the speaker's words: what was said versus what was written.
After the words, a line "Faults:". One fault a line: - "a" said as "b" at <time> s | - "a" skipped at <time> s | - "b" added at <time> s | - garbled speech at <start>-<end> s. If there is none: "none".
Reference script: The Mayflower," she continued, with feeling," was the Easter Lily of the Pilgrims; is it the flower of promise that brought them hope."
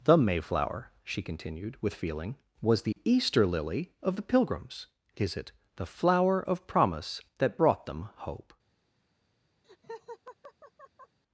The Mayflower," she continued, with feeling," was the Easter Lily of the Pilgrims; is it the flower of promise that brought them hope."
Faults:
none